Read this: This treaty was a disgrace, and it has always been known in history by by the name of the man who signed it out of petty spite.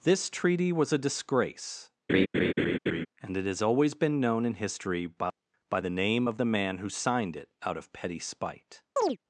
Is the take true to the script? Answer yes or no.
yes